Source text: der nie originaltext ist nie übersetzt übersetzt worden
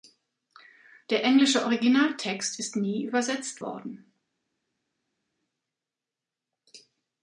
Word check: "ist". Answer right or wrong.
right